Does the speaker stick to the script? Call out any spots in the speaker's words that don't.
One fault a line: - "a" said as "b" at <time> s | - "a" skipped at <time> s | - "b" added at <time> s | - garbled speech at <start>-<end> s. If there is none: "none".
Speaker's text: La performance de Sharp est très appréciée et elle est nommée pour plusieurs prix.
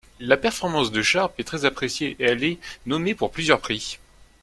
none